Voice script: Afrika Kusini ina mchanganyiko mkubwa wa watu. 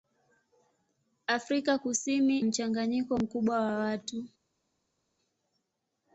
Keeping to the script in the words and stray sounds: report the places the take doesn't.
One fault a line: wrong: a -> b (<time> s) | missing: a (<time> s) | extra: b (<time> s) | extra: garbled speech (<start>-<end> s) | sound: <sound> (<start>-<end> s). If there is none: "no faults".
missing: ina (2.4 s)